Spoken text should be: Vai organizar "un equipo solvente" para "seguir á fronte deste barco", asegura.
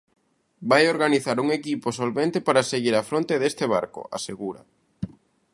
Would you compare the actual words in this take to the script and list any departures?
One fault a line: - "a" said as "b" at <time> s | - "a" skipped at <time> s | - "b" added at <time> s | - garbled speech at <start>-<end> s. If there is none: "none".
none